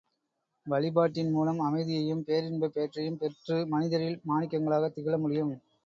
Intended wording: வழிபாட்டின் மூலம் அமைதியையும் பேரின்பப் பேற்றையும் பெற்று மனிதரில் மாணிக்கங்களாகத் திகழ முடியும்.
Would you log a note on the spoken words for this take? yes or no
no